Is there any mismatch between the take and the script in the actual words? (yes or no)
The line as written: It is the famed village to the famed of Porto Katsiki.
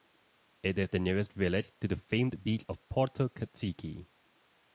yes